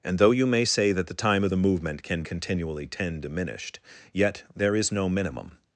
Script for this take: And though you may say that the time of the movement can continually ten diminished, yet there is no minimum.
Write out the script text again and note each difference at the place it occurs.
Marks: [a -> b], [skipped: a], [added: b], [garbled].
And though you may say that the time of the movement can continually ten diminished, yet there is no minimum.